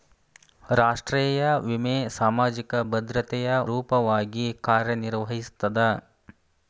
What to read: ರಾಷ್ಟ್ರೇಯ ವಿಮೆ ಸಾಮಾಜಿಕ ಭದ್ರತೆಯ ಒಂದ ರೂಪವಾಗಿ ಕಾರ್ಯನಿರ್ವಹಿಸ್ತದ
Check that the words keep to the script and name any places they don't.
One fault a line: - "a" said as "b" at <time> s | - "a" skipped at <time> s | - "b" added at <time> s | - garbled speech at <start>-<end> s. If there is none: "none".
- "ಒಂದ" skipped at 3.5 s